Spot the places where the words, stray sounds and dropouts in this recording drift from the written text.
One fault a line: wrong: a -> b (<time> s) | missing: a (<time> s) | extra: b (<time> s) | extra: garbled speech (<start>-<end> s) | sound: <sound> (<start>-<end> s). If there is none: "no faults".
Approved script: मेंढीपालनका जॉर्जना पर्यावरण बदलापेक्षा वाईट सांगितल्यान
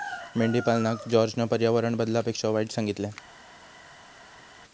no faults